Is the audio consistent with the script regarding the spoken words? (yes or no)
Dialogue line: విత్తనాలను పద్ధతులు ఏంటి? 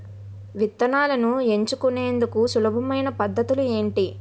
no